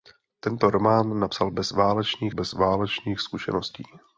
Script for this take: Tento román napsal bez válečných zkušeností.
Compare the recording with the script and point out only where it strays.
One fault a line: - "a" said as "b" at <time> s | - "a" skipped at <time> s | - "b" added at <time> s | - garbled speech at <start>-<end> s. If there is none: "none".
- "bez válečných" added at 2.3 s